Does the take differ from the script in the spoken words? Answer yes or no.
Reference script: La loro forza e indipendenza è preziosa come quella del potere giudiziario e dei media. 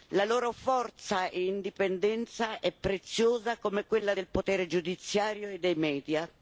no